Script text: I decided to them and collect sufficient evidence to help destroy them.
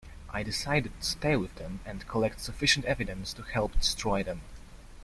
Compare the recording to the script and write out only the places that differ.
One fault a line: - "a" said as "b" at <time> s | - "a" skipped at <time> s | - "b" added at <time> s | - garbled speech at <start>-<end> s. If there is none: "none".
- "stay with" added at 1.0 s